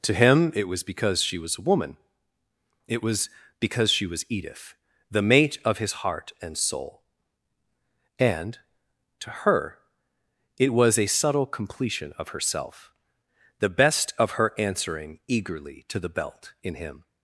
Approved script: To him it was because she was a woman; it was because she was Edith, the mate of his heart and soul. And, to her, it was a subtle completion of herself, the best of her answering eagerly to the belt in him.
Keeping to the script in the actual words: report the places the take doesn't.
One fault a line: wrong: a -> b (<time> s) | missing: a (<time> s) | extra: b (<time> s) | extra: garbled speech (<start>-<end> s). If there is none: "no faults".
no faults